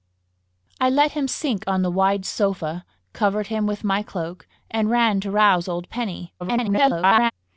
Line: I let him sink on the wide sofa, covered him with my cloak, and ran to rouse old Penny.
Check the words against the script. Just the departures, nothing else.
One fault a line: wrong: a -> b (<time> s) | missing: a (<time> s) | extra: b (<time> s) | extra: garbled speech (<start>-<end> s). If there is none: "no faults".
extra: garbled speech (6.4-7.3 s)